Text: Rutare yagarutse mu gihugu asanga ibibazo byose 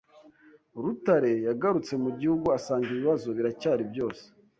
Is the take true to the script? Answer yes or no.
no